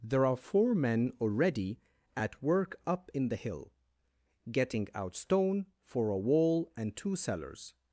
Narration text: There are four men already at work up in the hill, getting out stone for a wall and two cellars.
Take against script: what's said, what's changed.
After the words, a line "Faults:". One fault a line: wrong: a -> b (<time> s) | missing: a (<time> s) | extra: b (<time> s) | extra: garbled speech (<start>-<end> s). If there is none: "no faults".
There are four men already at work up in the hill, getting out stone for a wall and two cellars.
Faults:
no faults